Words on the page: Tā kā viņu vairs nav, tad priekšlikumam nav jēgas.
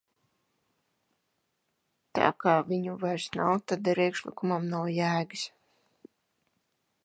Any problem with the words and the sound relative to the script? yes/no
no